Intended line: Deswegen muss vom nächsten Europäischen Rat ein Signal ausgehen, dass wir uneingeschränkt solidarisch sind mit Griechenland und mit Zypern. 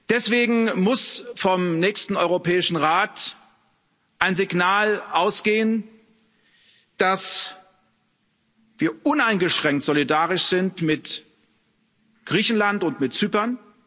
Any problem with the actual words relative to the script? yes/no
no